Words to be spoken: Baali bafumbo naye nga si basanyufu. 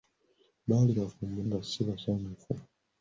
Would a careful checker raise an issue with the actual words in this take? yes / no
yes